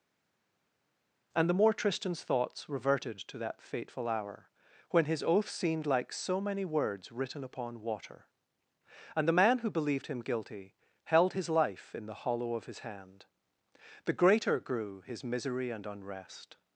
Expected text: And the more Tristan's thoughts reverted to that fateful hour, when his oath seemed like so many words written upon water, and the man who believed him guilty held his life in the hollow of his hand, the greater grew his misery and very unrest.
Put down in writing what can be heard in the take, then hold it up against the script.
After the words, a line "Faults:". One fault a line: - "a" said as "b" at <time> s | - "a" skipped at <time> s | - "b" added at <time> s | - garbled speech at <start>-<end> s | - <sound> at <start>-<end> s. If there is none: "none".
And the more Tristan's thoughts reverted to that fateful hour, when his oath seemed like so many words written upon water, and the man who believed him guilty held his life in the hollow of his hand, the greater grew his misery and unrest.
Faults:
- "very" skipped at 15.9 s